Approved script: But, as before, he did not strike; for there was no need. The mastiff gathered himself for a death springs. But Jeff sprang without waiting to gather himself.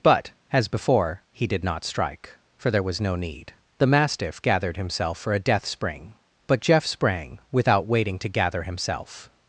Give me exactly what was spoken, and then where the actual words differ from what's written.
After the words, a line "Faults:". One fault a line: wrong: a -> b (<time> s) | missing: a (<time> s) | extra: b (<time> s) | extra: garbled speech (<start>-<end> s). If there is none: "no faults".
But, as before, he did not strike; for there was no need. The mastiff gathered himself for a death spring. But Jeff sprang without waiting to gather himself.
Faults:
wrong: springs -> spring (5.7 s)